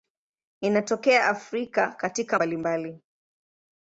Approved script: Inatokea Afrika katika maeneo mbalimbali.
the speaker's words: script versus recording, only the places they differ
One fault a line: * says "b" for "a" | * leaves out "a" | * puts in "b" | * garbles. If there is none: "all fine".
* leaves out "maeneo"